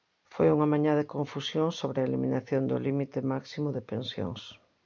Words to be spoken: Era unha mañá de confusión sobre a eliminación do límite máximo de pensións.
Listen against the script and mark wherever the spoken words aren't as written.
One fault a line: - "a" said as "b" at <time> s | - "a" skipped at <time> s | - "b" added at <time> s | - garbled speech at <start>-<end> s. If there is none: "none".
- "Era" said as "Foi" at 0.3 s